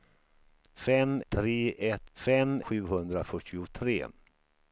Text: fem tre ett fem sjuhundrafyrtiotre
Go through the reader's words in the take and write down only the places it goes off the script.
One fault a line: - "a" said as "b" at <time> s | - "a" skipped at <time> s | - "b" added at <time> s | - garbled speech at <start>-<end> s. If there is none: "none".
none